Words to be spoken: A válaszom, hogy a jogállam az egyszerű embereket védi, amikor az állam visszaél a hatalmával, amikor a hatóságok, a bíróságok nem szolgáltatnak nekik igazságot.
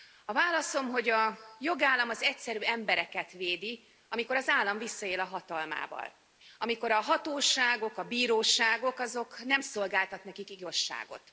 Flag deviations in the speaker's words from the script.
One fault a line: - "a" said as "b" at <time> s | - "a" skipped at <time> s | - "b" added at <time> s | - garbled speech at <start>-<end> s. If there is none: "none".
none